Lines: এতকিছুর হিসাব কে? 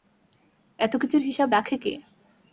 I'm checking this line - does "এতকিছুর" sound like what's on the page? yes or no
yes